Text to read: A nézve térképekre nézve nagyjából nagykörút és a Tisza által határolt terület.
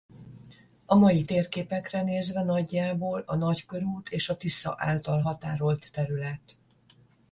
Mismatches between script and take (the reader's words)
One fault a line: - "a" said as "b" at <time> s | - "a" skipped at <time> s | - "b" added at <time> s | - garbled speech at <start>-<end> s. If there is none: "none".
- "nézve" said as "mai" at 0.9 s
- "a" added at 3.2 s